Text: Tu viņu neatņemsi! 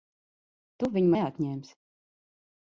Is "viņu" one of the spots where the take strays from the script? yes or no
no